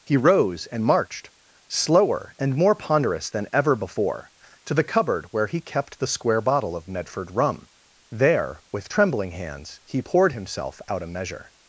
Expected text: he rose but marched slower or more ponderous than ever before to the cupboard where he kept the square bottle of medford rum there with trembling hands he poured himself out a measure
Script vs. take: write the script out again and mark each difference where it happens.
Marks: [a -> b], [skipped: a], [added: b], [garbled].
he rose [but -> and] marched slower [or -> and] more ponderous than ever before to the cupboard where he kept the square bottle of medford rum there with trembling hands he poured himself out a measure